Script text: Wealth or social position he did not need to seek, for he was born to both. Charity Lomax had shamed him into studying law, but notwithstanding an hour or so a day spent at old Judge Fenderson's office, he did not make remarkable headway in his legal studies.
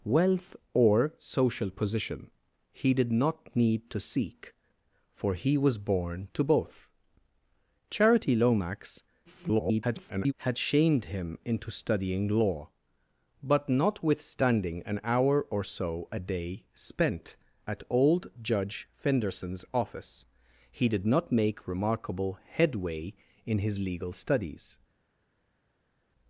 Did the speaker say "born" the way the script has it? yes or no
yes